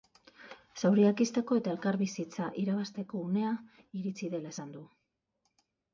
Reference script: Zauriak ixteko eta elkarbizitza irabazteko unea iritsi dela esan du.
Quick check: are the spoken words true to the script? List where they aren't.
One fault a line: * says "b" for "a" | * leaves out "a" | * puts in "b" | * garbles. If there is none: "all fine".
all fine